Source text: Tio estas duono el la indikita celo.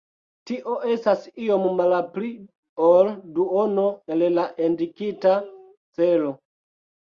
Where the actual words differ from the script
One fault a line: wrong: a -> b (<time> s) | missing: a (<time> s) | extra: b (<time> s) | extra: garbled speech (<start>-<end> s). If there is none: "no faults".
extra: iom malpli ol (1.5 s)